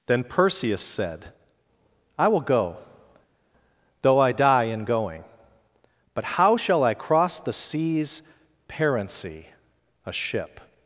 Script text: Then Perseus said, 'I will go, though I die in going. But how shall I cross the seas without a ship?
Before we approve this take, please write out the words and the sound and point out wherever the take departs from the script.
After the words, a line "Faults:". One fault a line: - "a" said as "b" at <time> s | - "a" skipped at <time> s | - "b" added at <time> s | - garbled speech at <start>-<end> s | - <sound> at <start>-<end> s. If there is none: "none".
Then Perseus said, 'I will go, though I die in going. But how shall I cross the seas parency a ship?
Faults:
- "without" said as "parency" at 8.7 s